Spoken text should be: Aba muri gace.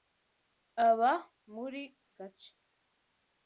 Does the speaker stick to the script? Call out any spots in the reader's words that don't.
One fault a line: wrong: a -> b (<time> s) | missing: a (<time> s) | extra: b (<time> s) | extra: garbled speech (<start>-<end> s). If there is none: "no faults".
no faults